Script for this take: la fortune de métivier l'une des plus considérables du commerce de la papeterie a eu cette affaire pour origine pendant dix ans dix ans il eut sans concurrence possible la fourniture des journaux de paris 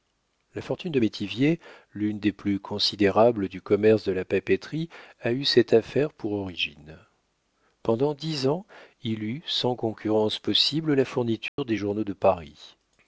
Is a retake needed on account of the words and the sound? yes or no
yes